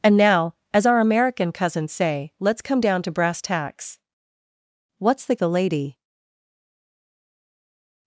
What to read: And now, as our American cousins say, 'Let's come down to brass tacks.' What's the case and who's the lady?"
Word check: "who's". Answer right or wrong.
wrong